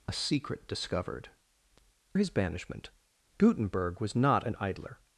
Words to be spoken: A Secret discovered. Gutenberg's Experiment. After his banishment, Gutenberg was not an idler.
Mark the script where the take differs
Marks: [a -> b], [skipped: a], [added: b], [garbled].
A Secret discovered. [skipped: Gutenberg's Experiment. After] his banishment, Gutenberg was not an idler.